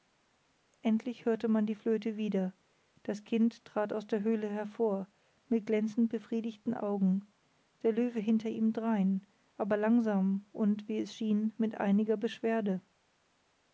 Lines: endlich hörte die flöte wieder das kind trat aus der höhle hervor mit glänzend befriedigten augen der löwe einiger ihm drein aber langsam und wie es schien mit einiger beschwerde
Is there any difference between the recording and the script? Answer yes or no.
yes